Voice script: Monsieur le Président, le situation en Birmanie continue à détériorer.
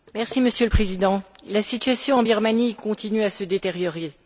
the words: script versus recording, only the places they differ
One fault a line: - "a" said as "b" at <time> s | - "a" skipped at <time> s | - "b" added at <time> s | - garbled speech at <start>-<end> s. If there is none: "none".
- "le" said as "la" at 1.5 s
- "se" added at 3.3 s